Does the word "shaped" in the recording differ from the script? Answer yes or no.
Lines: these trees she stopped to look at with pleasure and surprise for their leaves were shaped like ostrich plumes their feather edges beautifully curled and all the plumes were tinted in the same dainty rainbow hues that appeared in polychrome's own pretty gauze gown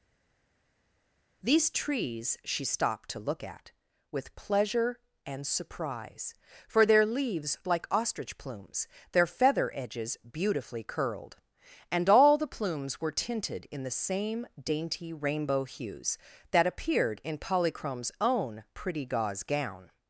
yes